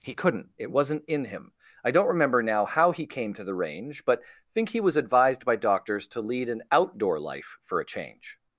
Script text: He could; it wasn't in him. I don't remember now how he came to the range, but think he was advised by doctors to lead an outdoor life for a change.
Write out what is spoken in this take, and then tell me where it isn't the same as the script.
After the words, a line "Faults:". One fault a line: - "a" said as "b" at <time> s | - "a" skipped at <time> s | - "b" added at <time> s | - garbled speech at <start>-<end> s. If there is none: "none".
He couldn't; it wasn't in him. I don't remember now how he came to the range, but think he was advised by doctors to lead an outdoor life for a change.
Faults:
- "could" said as "couldn't" at 0.1 s